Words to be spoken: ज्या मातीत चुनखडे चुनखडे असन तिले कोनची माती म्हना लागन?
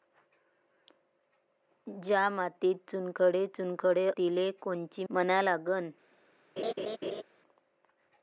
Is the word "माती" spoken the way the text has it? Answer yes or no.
no